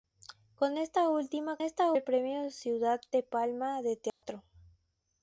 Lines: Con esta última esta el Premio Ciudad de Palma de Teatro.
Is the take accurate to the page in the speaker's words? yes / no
yes